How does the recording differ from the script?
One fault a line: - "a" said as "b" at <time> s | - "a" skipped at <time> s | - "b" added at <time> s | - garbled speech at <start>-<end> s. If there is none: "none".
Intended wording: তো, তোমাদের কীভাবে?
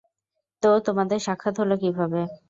- "সাক্ষাৎ হলো" added at 1.3 s